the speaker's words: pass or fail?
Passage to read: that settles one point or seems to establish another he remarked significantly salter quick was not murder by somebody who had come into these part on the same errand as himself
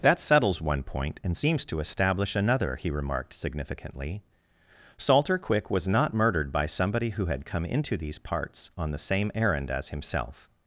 fail